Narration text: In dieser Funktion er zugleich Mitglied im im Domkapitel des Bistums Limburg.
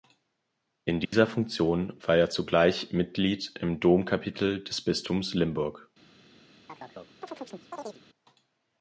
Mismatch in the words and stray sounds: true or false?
true